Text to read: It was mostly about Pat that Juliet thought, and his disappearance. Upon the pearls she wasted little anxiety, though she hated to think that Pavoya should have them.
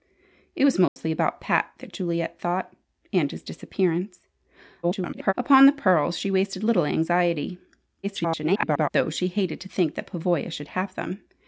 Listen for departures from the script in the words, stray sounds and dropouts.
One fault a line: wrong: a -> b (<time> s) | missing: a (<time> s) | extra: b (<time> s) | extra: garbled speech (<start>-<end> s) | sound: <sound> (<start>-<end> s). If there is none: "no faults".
sound: dropout (0.9-1.0 s)
extra: garbled speech (4.8-5.3 s)
extra: garbled speech (8.0-8.9 s)